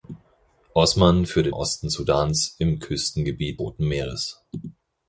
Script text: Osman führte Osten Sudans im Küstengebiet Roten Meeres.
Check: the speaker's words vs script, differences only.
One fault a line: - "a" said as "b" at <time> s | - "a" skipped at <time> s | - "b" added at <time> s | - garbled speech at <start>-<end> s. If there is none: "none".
none